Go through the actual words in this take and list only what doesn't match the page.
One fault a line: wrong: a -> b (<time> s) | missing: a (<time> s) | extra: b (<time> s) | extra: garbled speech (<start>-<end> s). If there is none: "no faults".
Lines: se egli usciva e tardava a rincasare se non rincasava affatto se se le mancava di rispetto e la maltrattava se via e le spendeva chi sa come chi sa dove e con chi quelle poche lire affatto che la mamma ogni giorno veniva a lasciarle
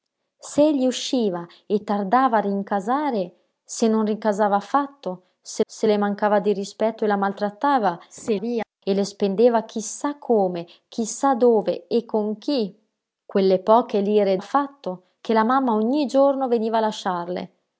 no faults